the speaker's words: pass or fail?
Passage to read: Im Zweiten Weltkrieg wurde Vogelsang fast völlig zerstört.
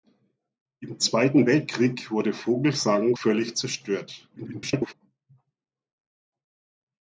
fail